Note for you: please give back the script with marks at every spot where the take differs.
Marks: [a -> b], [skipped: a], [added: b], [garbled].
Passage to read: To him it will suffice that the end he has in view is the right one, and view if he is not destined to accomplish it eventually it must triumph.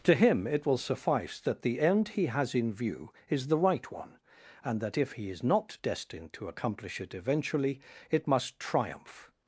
To him it will suffice that the end he has in view is the right one, and [view -> that] if he is not destined to accomplish it eventually it must triumph.